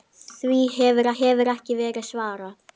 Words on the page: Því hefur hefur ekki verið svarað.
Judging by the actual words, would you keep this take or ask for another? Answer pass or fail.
pass